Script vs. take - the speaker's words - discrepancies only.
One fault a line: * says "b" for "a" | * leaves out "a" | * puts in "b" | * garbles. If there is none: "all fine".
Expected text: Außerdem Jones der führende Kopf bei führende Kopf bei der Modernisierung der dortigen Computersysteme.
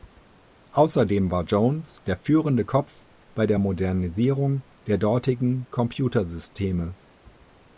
* puts in "war"
* leaves out "führende Kopf bei"